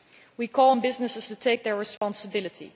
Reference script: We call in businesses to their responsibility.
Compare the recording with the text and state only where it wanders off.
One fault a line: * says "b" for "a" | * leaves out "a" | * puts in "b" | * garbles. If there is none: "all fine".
* says "on" for "in"
* puts in "take"